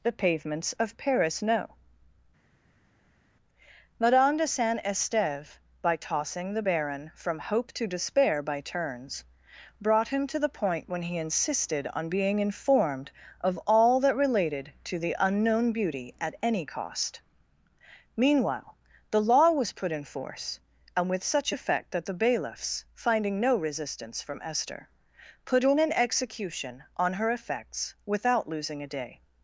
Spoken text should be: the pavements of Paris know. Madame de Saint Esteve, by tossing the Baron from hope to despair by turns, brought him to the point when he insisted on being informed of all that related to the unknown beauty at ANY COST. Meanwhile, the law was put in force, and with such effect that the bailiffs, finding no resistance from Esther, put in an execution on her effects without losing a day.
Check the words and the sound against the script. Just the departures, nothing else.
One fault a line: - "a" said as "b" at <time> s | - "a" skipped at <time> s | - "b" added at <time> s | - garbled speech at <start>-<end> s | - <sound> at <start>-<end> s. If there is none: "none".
none